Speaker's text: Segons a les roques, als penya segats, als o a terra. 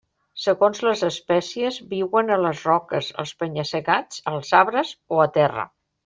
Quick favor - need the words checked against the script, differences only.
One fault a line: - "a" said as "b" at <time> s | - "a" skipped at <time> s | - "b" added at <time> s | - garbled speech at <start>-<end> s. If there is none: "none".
- "les espècies viuen" added at 0.8 s
- "arbres" added at 4.6 s